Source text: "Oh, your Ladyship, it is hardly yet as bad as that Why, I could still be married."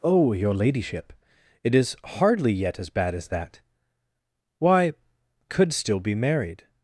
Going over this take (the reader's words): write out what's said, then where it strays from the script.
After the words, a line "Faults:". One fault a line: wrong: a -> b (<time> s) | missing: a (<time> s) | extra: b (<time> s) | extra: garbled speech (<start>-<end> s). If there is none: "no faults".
"Oh, your Ladyship, it is hardly yet as bad as that Why, could still be married."
Faults:
missing: I (4.9 s)